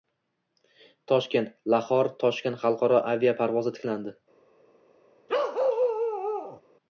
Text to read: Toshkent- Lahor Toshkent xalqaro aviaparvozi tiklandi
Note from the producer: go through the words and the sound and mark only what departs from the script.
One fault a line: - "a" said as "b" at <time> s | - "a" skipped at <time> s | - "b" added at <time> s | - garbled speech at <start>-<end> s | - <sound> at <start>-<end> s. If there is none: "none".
- bark at 5.3-6.6 s